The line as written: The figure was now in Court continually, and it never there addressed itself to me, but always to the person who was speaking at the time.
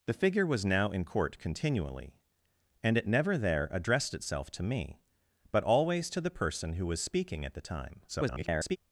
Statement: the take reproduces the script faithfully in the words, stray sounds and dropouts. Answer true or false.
false